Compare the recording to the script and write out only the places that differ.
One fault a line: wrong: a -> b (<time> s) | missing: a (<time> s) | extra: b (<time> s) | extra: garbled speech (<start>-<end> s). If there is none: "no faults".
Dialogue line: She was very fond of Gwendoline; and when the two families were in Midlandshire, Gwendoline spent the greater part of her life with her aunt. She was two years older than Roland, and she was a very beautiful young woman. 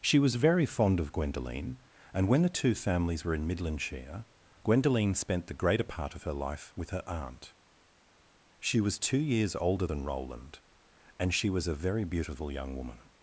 no faults